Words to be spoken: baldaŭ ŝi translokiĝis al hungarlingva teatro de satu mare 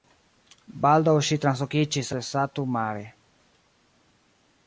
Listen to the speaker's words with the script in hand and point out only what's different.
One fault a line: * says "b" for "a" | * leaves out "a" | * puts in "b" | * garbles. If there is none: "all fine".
* leaves out "al hungarlingva teatro"